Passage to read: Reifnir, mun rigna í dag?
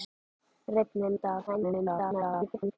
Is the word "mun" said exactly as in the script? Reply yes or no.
no